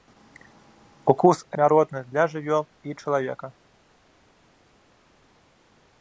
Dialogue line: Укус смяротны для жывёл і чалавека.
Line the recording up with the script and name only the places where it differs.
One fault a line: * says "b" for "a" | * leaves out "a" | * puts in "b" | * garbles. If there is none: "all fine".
all fine